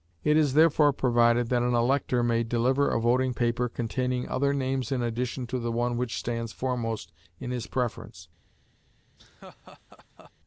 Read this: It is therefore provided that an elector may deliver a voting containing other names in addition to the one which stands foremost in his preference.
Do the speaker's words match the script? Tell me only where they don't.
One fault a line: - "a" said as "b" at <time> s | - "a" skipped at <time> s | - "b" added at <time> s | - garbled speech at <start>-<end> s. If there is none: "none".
- "paper" added at 3.3 s